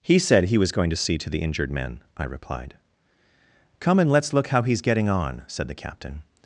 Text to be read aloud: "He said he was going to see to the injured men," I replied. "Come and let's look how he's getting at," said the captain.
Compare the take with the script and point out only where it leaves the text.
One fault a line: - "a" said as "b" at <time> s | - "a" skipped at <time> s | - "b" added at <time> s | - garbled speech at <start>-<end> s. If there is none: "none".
- "at" said as "on" at 5.1 s